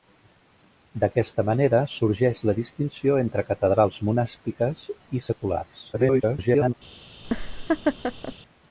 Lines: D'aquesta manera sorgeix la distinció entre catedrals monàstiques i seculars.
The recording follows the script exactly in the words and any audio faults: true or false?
false